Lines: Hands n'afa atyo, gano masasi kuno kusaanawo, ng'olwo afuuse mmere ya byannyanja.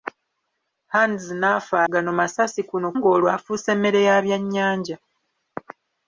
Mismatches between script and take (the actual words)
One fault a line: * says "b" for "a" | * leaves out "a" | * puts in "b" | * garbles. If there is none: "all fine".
* leaves out "atyo"
* leaves out "kusaanawo"